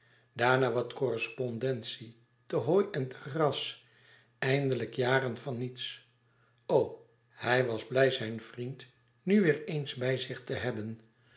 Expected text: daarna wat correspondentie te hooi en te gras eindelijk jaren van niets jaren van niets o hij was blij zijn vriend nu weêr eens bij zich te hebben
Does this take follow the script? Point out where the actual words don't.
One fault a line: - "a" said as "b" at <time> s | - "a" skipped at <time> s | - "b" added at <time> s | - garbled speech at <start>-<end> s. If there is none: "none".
- "jaren van niets" skipped at 6.1 s